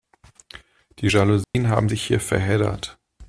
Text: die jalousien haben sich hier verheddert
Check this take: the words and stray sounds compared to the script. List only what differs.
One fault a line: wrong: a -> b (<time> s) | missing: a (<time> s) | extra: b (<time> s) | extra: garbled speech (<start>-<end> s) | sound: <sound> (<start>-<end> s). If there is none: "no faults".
sound: dropout (1.4-1.5 s)